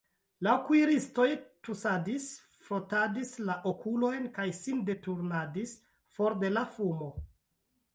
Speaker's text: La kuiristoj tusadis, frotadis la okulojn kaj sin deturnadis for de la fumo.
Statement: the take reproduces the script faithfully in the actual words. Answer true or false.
true